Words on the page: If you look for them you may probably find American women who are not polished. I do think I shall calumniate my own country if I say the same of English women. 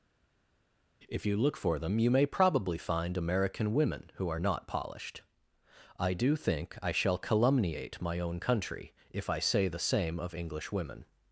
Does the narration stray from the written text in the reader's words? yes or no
no